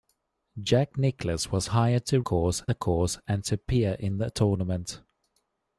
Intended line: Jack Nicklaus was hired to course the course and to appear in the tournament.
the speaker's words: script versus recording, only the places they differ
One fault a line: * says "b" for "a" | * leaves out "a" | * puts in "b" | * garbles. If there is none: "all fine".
all fine